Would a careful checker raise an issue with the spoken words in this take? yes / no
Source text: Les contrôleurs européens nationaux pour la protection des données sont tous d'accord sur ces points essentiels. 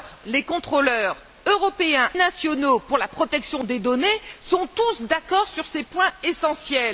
no